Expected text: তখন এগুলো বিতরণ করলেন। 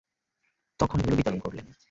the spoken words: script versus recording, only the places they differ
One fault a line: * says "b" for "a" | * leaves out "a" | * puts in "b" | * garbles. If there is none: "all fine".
all fine